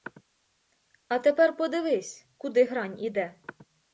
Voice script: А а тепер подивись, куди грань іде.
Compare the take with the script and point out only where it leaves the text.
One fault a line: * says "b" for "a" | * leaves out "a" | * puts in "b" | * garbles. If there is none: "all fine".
* leaves out "а"